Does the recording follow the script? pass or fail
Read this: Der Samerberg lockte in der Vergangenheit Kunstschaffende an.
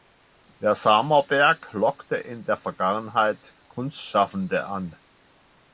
pass